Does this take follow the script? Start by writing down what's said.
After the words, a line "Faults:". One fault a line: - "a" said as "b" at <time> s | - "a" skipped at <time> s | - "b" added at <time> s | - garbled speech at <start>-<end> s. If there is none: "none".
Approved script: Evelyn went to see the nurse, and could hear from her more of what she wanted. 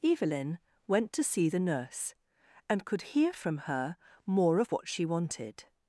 Evelyn went to see the nurse, and could hear from her more of what she wanted.
Faults:
none